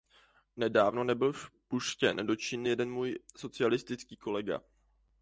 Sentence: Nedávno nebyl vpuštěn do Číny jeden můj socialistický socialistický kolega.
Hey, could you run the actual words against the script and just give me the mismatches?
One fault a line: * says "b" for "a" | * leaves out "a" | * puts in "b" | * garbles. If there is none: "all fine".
* leaves out "socialistický"